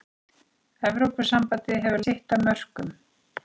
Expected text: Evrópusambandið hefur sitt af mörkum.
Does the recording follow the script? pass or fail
pass